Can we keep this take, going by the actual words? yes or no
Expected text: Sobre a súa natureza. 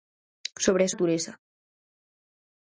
no